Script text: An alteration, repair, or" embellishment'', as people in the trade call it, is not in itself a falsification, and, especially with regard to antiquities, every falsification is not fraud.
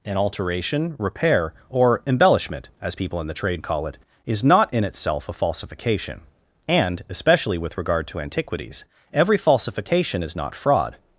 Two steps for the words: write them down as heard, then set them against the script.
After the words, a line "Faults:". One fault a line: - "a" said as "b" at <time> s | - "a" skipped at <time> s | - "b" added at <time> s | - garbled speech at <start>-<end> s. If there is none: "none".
An alteration, repair, or" embellishment'', as people in the trade call it, is not in itself a falsification, and, especially with regard to antiquities, every falsification is not fraud.
Faults:
none